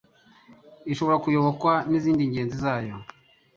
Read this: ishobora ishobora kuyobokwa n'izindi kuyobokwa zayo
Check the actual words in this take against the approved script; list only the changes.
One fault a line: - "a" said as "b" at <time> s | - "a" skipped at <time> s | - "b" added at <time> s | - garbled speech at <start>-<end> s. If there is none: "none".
- "ishobora" skipped at 1.2 s
- "kuyobokwa" said as "ngenzi" at 2.3 s